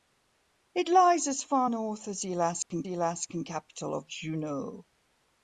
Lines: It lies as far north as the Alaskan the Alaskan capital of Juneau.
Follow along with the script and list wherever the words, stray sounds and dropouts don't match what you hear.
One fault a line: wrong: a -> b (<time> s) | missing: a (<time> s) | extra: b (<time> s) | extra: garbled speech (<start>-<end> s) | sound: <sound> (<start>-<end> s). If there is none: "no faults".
sound: dropout (2.6-2.7 s)